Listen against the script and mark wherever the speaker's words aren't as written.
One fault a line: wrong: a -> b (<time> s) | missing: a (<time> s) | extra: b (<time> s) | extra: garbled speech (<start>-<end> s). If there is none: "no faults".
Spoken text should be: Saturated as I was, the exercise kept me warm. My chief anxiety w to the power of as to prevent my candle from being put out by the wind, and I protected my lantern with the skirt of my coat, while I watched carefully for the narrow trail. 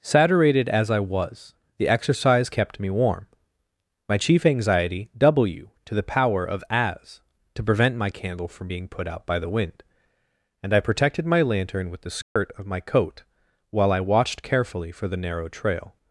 no faults